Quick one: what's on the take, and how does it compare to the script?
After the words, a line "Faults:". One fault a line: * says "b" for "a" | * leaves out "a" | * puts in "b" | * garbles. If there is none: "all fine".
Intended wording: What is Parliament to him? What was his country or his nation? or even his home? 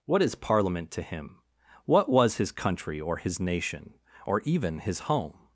What is Parliament to him? What was his country or his nation? or even his home?
Faults:
all fine